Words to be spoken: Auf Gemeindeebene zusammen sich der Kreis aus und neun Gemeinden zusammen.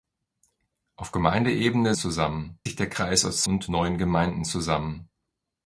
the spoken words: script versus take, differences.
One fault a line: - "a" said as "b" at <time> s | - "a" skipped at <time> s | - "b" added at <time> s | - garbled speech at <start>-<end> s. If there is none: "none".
none